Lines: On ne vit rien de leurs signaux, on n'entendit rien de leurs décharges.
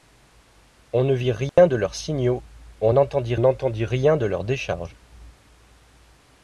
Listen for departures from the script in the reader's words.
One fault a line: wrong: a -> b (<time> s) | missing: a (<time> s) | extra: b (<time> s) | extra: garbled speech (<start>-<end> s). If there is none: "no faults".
extra: n'entendit (3.4 s)